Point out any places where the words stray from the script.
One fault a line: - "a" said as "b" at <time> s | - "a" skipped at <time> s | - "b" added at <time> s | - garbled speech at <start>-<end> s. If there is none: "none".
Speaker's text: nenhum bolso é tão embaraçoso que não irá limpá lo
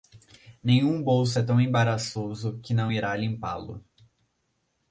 none